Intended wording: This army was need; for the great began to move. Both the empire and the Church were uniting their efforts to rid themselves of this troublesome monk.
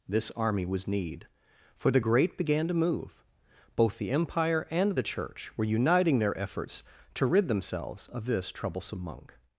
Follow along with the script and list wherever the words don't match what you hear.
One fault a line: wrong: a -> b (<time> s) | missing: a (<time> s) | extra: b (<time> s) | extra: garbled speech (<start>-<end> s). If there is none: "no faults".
no faults